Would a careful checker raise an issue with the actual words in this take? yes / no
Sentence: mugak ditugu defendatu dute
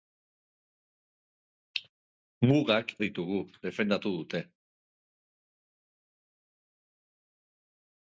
no